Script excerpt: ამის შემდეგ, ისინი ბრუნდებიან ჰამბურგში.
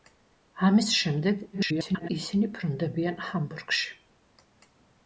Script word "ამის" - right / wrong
right